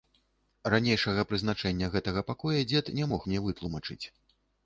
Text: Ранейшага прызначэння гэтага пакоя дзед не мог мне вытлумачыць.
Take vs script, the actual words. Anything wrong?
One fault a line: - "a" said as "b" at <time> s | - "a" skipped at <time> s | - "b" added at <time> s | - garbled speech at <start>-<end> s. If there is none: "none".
none